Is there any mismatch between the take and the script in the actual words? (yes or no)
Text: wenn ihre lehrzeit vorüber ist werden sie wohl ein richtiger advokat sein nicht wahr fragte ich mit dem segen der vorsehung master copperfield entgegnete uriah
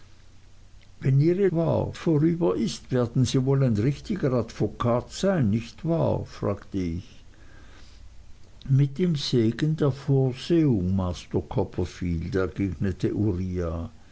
yes